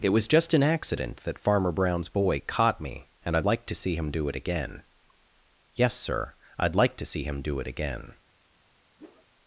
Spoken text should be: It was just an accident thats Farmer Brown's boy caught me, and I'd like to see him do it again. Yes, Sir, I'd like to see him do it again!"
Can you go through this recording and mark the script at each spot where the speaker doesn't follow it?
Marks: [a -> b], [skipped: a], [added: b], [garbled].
It was just an accident [thats -> that] Farmer Brown's boy caught me, and I'd like to see him do it again. Yes, Sir, I'd like to see him do it again!"